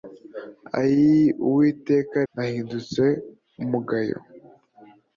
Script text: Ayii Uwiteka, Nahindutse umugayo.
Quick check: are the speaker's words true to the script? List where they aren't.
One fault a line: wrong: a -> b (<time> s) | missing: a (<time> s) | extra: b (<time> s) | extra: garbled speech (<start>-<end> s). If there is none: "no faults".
no faults